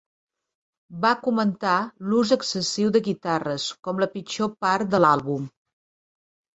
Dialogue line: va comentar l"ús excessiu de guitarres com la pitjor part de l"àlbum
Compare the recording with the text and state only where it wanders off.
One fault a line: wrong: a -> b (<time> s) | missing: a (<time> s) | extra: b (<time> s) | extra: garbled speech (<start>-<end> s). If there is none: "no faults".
no faults